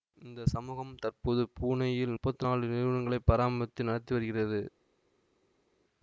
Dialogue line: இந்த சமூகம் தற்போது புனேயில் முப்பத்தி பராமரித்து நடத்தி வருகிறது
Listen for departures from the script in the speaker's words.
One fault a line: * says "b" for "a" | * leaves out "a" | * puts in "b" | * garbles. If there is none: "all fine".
* puts in "நாலு நிறுவனங்களை"